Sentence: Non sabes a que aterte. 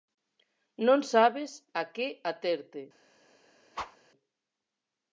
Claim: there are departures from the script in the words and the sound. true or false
true